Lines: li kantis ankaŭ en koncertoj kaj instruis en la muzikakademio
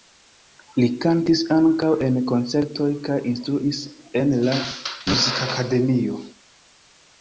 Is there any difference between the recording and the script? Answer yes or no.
no